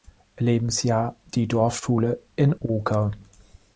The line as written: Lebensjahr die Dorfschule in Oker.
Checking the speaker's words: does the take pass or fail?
pass